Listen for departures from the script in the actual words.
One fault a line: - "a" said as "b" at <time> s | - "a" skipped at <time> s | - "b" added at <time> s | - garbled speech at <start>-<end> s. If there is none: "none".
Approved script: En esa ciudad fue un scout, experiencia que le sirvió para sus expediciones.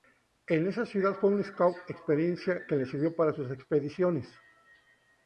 none